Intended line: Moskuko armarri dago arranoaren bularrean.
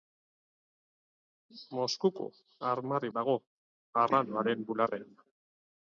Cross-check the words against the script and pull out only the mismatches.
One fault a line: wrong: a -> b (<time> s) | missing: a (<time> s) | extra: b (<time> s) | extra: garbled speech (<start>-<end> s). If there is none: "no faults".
no faults